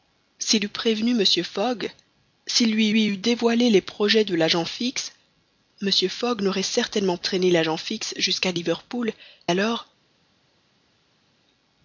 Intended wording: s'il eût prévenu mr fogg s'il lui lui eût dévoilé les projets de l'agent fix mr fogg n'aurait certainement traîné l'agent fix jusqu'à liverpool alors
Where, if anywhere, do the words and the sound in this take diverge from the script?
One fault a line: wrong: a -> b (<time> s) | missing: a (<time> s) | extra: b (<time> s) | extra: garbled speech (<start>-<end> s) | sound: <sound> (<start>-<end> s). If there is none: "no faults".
no faults